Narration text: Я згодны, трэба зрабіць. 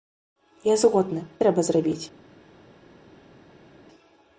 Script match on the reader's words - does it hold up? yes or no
yes